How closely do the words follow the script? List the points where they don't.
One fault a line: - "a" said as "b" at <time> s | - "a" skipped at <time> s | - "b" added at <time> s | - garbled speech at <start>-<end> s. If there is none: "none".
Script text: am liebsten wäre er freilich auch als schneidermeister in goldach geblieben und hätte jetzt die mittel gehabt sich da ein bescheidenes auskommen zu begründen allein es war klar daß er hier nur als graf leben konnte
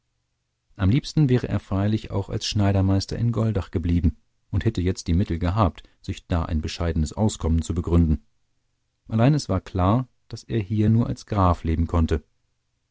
none